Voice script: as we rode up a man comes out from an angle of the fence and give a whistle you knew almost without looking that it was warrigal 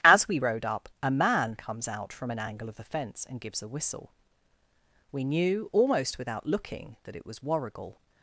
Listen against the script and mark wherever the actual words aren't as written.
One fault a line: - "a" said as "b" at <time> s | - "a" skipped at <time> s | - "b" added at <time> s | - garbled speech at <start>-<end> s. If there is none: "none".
- "give" said as "gives" at 3.4 s
- "you" said as "we" at 5.1 s